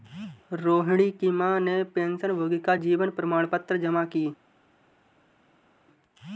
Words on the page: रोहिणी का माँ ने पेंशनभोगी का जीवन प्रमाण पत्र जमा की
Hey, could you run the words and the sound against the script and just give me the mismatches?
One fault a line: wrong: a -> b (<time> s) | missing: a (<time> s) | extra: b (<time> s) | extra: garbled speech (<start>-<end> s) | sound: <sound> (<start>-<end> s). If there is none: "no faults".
wrong: का -> की (1.1 s)